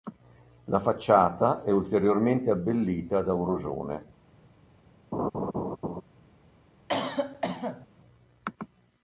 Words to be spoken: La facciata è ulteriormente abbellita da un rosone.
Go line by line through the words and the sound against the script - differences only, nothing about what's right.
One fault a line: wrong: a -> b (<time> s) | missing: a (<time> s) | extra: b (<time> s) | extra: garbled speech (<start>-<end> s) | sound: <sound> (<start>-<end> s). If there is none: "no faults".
sound: laugh (5.1-6.0 s)
sound: cough (6.9-7.9 s)